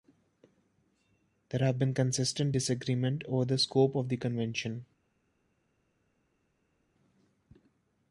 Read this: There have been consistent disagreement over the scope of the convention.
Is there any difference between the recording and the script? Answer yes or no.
no